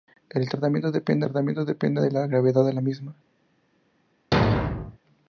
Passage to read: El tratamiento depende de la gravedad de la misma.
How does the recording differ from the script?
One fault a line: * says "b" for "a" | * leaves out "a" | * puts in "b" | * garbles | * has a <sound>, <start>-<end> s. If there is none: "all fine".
* puts in "tratamiento depende"
* has a thud, 4.3-5.0 s